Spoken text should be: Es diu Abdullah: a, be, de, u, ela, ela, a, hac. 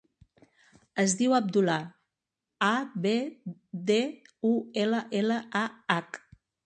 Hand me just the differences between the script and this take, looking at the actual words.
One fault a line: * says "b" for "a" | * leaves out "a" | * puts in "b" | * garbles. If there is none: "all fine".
all fine